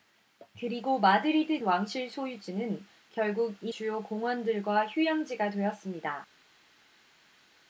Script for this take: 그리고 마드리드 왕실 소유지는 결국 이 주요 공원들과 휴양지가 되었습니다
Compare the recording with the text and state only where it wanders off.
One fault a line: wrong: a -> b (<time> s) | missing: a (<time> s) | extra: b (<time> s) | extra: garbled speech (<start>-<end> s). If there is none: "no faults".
no faults